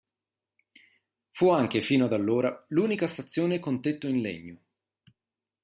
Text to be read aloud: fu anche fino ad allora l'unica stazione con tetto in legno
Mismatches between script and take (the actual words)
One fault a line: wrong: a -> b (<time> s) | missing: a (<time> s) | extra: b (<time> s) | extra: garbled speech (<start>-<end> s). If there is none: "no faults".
no faults